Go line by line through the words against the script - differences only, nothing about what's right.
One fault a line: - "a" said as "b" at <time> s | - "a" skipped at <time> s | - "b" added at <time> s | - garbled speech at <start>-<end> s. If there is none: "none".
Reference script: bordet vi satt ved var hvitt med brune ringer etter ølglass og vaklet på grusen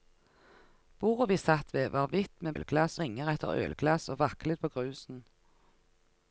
- "brune" said as "ølglass" at 2.6 s